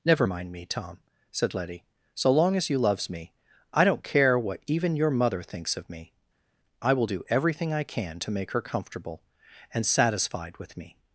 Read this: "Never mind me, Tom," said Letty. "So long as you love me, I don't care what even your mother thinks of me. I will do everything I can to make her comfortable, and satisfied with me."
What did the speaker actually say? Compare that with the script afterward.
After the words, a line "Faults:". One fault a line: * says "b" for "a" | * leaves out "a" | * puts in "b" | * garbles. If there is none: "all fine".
"Never mind me, Tom," said Letty. "So long as you loves me, I don't care what even your mother thinks of me. I will do everything I can to make her comfortable, and satisfied with me."
Faults:
* says "loves" for "love"